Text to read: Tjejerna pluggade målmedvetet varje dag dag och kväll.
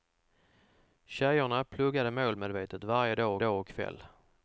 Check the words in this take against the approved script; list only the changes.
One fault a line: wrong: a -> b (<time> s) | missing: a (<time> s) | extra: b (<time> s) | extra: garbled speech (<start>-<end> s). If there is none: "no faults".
no faults